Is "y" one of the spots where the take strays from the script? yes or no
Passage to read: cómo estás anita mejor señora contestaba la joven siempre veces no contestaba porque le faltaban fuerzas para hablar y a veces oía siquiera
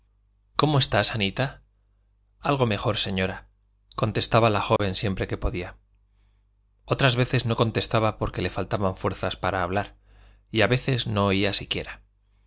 no